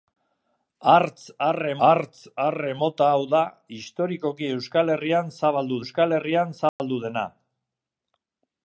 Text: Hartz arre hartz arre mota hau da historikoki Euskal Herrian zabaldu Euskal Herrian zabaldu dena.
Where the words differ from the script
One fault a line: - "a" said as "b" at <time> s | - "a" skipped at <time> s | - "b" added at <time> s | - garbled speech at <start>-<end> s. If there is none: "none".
none